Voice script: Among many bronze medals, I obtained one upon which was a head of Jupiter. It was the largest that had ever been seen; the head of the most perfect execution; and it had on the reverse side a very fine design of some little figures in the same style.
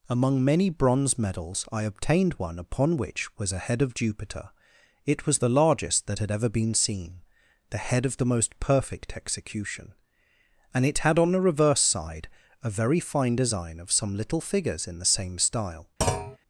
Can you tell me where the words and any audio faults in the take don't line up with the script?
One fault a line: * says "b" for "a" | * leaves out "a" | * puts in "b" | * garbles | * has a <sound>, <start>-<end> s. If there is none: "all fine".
* has a thud, 16.0-16.4 s